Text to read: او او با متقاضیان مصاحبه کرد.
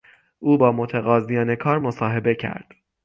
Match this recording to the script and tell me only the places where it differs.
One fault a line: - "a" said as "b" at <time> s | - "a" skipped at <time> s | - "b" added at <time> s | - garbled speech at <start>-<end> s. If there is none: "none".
- "او" skipped at 0.6 s
- "کار" added at 1.6 s